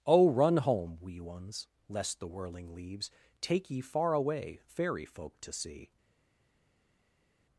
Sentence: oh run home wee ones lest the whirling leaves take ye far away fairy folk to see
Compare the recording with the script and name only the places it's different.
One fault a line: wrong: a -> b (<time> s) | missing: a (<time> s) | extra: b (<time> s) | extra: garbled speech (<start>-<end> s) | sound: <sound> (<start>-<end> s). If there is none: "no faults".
no faults